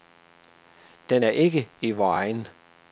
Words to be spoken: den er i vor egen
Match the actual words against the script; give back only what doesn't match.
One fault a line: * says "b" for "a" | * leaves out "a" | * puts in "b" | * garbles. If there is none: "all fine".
* puts in "ikke"